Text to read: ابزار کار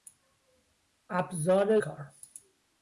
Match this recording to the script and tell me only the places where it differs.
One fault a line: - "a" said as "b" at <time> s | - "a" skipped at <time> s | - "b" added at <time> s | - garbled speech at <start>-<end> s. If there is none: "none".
none